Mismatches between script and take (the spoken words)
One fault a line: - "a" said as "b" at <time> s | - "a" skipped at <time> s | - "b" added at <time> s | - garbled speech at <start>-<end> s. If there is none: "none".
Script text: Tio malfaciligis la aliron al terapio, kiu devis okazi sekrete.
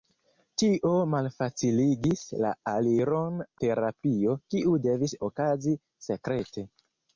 - "al" skipped at 3.4 s